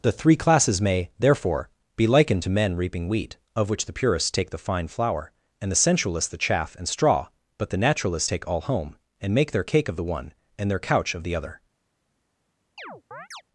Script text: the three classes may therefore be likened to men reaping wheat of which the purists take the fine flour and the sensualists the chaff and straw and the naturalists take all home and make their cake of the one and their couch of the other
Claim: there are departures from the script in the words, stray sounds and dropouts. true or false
true